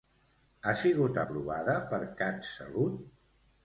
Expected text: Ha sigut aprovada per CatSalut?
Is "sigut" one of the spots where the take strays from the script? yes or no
no